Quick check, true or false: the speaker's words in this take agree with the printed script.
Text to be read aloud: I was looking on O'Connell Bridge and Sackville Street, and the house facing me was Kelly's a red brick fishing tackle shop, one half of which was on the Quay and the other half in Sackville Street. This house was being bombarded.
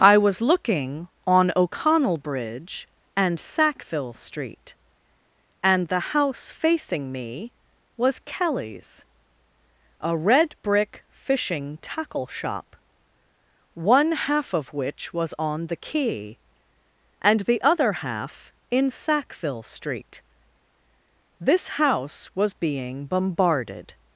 true